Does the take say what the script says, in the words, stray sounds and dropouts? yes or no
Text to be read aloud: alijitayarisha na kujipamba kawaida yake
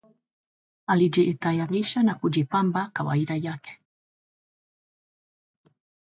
yes